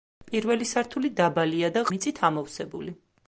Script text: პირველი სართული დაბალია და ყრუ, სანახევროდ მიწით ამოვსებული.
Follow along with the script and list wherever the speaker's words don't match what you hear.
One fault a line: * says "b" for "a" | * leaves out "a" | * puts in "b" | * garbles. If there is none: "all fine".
* leaves out "ყრუ სანახევროდ"